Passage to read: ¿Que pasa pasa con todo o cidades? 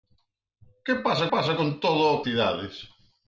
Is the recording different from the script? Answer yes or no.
no